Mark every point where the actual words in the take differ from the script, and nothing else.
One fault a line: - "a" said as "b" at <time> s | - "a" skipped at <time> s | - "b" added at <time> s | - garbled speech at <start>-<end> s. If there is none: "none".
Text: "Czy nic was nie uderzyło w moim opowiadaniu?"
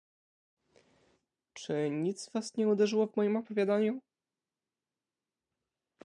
none